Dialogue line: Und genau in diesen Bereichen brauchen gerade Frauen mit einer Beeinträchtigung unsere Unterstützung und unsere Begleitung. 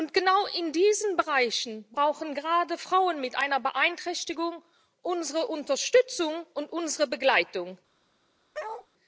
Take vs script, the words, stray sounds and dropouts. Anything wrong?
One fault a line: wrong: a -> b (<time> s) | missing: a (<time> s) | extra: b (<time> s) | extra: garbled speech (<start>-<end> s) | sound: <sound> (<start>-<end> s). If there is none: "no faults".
sound: bark (8.5-8.9 s)